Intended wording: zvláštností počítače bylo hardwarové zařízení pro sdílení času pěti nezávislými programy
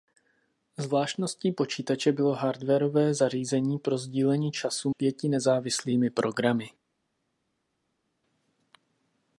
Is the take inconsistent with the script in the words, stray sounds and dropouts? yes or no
no